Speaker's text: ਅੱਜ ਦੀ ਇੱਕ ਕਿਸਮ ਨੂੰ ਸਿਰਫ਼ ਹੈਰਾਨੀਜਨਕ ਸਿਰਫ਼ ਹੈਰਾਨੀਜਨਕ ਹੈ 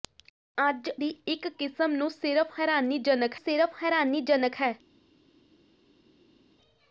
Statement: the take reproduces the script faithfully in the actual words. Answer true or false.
true